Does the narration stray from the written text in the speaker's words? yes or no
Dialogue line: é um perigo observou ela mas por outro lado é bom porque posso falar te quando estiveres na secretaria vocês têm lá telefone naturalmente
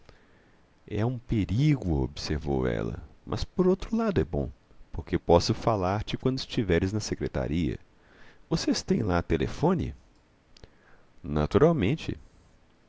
no